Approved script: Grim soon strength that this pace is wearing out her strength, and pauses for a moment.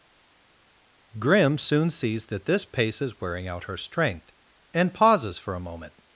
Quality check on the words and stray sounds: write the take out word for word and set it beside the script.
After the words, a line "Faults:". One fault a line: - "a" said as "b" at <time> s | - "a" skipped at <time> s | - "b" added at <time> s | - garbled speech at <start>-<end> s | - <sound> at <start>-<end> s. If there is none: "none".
Grim soon sees that this pace is wearing out her strength, and pauses for a moment.
Faults:
- "strength" said as "sees" at 1.9 s